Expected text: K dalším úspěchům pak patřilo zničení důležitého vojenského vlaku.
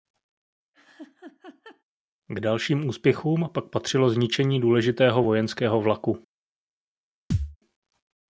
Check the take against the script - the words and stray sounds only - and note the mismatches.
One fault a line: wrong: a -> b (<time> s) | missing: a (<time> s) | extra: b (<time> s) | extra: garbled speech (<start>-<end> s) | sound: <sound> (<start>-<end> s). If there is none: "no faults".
sound: laugh (0.7-1.8 s)
sound: thud (7.3-7.6 s)